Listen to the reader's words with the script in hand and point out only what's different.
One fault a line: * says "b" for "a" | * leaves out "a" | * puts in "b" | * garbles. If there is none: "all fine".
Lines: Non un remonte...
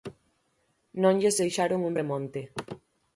* puts in "lles deixaron"